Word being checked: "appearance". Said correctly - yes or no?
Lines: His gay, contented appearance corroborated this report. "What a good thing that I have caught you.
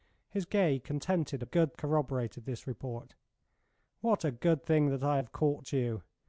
no